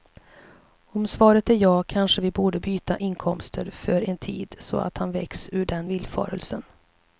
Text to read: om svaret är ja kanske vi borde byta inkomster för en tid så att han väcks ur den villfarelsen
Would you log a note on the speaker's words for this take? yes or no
no